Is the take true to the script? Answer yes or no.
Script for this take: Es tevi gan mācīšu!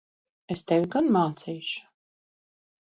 yes